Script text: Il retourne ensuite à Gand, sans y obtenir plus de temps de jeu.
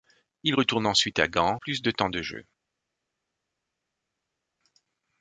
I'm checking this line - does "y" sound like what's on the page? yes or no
no